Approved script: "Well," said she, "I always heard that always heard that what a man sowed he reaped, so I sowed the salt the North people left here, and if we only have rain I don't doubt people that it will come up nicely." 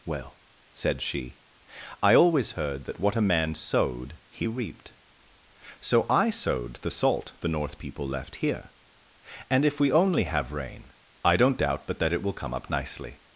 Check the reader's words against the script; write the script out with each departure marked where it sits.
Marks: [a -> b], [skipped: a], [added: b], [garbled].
"Well," said she, "I always heard that [skipped: always heard that] what a man sowed he reaped, so I sowed the salt the North people left here, and if we only have rain I don't doubt [people -> but] that it will come up nicely."